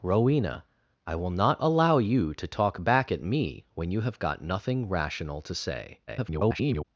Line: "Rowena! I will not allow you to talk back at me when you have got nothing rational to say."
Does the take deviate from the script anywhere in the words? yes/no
yes